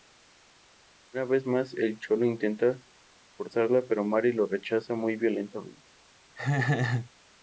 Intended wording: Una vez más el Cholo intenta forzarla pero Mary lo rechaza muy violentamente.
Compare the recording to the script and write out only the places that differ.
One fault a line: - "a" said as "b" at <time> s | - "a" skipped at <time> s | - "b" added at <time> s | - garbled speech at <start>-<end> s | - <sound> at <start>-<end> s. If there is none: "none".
- laugh at 6.4-7.1 s